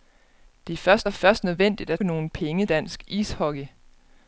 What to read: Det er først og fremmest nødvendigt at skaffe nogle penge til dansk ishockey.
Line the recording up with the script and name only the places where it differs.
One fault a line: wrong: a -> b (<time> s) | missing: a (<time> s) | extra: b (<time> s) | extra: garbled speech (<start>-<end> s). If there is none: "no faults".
wrong: fremmest -> først (1.1 s)
missing: skaffe (2.0 s)
missing: til (2.7 s)